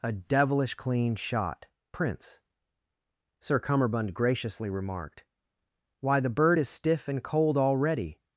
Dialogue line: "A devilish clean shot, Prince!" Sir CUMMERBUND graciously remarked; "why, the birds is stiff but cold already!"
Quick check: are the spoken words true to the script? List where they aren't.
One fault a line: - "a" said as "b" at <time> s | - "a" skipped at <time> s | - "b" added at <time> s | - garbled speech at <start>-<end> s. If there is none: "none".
- "birds" said as "bird" at 6.3 s
- "but" said as "and" at 7.1 s